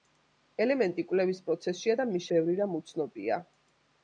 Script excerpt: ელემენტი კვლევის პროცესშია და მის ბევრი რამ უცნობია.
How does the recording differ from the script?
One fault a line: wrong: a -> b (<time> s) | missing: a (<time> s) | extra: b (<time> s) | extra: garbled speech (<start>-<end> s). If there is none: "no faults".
no faults